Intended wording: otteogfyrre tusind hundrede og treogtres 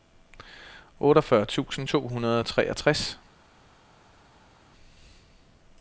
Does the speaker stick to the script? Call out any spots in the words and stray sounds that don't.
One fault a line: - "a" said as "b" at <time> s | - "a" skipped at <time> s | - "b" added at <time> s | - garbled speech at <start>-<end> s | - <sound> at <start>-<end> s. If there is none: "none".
- "to" added at 1.9 s